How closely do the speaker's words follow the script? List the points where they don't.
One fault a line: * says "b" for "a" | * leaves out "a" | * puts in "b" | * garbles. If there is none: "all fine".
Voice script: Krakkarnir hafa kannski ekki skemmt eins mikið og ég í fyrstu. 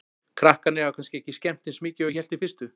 * puts in "hélt"